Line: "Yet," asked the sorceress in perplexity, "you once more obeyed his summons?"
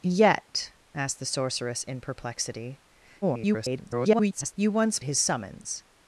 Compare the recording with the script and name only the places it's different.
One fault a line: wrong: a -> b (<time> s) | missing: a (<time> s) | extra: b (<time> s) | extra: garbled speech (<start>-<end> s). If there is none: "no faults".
extra: garbled speech (3.2-4.5 s)
missing: more obeyed (5.0 s)